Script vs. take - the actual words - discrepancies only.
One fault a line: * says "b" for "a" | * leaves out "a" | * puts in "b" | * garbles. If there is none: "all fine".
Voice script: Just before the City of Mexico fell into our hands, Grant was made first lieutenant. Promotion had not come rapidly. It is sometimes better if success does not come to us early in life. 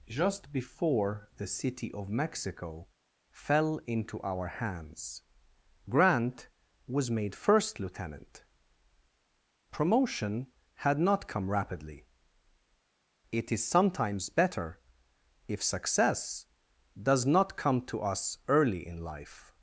all fine